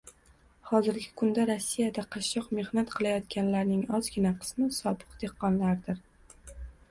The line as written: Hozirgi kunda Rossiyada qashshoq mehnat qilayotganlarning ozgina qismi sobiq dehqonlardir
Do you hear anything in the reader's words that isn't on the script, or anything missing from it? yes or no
no